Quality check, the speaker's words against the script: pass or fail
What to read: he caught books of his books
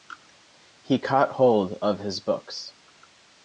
fail